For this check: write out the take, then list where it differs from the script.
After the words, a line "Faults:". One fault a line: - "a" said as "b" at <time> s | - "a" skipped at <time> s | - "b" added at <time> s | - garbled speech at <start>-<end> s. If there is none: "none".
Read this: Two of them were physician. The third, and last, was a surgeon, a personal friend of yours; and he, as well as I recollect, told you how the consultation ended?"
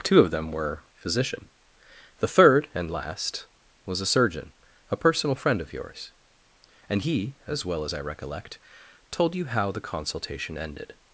Two of them were physician. The third, and last, was a surgeon, a personal friend of yours; and he, as well as I recollect, told you how the consultation ended?"
Faults:
none